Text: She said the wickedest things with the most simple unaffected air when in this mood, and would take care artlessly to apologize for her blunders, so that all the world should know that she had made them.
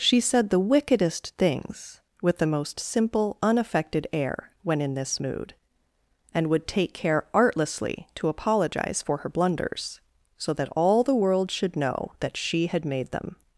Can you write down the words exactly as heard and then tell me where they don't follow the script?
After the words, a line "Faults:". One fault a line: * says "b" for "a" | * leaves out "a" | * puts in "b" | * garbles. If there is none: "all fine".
She said the wickedest things with the most simple unaffected air when in this mood, and would take care artlessly to apologize for her blunders, so that all the world should know that she had made them.
Faults:
all fine